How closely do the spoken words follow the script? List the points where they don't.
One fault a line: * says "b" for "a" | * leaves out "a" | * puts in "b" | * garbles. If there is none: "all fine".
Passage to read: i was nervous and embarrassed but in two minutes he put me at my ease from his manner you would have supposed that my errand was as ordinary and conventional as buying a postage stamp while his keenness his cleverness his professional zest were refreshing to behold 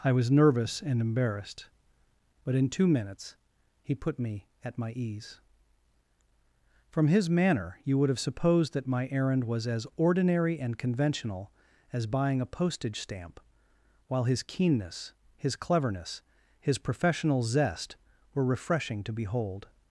all fine